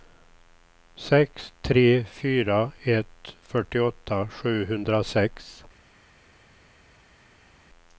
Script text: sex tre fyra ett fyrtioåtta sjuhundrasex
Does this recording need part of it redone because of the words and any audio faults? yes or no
no